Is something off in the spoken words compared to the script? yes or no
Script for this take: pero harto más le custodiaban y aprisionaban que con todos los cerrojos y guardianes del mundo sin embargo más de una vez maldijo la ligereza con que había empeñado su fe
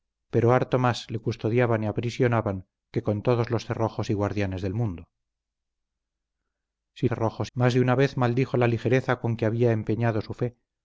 yes